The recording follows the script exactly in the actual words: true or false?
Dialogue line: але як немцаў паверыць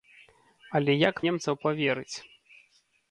true